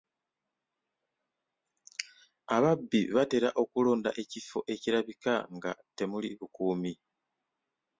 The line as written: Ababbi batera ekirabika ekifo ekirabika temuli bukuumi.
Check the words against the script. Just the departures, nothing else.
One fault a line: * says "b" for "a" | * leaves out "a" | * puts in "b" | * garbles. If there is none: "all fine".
* says "okulonda" for "ekirabika"
* puts in "nga"